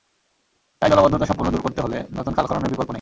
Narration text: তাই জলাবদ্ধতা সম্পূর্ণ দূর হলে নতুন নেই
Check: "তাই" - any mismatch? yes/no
no